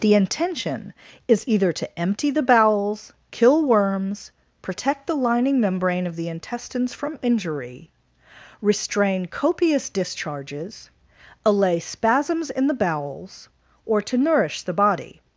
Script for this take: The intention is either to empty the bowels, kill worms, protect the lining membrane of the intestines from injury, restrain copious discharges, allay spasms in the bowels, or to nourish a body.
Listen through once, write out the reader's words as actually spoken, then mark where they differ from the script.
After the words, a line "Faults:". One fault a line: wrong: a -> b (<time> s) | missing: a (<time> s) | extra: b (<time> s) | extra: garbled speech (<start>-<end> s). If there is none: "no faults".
The intention is either to empty the bowels, kill worms, protect the lining membrane of the intestines from injury, restrain copious discharges, allay spasms in the bowels, or to nourish the body.
Faults:
wrong: a -> the (14.6 s)